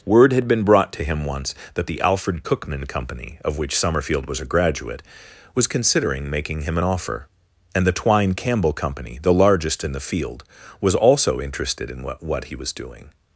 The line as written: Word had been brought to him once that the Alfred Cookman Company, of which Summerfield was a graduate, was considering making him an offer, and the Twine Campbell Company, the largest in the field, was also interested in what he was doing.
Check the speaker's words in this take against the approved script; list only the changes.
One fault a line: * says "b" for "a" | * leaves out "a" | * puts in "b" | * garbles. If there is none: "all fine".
* puts in "what"